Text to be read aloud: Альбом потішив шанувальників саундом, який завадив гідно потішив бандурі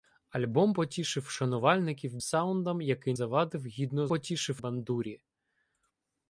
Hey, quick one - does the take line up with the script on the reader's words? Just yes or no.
yes